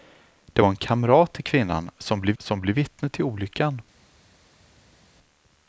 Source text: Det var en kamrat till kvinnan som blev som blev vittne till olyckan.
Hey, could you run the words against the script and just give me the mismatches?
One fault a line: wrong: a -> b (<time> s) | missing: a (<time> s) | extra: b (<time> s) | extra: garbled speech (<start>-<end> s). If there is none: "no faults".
no faults